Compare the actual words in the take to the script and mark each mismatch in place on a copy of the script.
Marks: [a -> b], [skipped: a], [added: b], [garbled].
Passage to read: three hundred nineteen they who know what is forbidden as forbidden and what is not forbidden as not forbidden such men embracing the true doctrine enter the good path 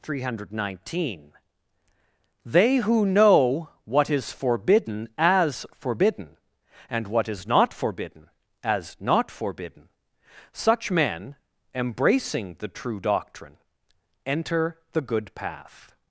three hundred nineteen they who know what is forbidden as forbidden and what is not forbidden as not forbidden such men embracing the true doctrine enter the good path